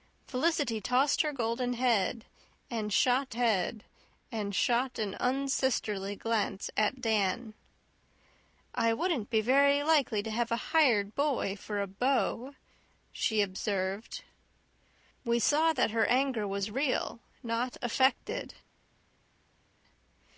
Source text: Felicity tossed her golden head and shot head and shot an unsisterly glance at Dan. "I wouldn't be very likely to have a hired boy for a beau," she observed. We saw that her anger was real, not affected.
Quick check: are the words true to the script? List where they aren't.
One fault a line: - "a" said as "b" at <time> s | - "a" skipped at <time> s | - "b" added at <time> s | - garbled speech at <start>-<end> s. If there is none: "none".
none